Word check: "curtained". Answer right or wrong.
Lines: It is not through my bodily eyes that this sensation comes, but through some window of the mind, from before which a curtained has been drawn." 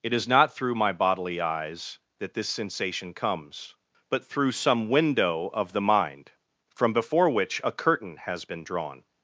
wrong